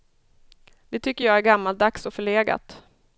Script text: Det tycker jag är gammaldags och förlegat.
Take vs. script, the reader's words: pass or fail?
pass